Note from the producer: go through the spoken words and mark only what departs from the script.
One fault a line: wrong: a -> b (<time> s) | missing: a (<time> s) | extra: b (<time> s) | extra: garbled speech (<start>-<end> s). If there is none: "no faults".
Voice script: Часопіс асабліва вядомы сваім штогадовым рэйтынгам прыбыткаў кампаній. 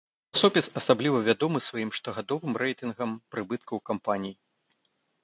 no faults